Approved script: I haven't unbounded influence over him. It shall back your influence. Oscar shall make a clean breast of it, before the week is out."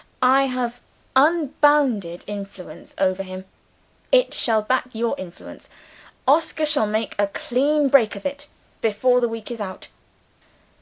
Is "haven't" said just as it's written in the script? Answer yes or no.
no